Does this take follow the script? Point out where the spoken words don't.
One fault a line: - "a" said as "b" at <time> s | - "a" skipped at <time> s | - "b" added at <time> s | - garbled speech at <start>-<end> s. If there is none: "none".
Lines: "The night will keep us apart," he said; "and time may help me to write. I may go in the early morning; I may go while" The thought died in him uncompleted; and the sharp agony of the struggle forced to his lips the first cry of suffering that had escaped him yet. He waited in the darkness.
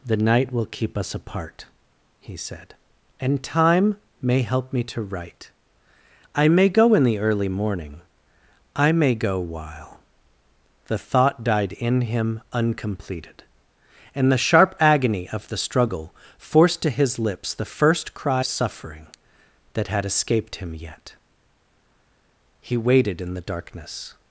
- "of" skipped at 18.4 s